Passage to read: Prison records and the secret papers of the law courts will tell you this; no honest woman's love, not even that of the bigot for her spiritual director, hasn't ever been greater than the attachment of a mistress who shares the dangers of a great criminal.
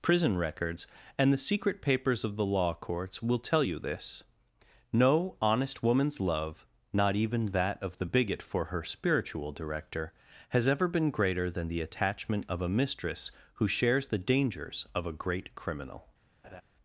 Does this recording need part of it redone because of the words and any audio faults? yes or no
yes